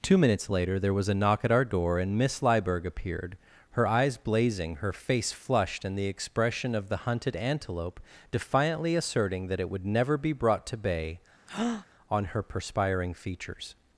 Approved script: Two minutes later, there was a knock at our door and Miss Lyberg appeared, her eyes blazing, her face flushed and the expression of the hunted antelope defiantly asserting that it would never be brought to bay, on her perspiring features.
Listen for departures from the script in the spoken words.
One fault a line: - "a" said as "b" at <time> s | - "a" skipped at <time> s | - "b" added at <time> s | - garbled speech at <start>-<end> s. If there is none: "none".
none